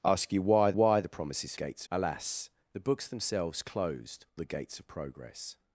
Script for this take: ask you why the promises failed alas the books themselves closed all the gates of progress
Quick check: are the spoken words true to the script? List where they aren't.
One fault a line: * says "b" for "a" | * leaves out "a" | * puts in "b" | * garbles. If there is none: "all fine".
* puts in "why"
* says "gates" for "failed"
* leaves out "all"